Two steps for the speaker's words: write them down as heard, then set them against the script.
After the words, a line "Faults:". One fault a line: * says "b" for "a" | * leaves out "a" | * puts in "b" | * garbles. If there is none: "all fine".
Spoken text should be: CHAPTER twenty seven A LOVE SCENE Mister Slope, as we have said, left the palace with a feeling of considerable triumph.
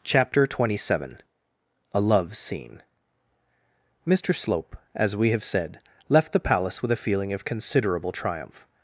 CHAPTER twenty seven A LOVE SCENE Mister Slope, as we have said, left the palace with a feeling of considerable triumph.
Faults:
all fine